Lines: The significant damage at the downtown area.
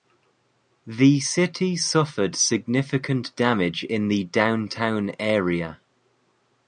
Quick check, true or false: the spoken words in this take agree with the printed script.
false